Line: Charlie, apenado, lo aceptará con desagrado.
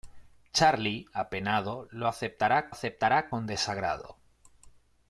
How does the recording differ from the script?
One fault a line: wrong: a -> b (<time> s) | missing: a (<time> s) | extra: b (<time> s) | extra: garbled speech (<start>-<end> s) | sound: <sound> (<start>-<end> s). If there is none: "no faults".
extra: aceptará (2.7 s)